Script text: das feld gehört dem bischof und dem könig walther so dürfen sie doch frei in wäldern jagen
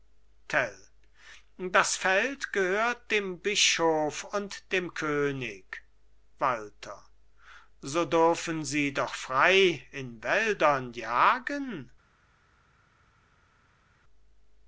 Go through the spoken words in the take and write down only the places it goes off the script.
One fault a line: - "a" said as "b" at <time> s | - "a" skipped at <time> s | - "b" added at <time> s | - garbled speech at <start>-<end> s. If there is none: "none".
none